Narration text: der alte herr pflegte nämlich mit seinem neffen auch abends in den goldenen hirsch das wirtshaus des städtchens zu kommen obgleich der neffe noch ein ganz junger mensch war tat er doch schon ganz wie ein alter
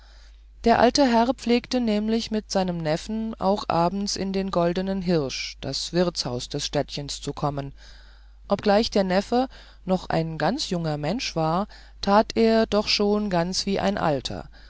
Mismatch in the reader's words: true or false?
false